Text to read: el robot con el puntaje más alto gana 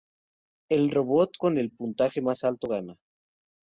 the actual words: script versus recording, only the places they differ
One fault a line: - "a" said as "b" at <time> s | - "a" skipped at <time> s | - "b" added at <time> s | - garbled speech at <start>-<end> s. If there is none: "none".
none